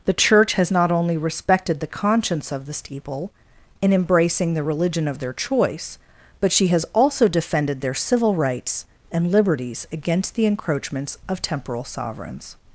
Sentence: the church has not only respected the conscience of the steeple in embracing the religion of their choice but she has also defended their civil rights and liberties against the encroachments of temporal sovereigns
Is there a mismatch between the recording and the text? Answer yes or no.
no